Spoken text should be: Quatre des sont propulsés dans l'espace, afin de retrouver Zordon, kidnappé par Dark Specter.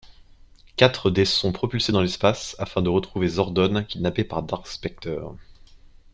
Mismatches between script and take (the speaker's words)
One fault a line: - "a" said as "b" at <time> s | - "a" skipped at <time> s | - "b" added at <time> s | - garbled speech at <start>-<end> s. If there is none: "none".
none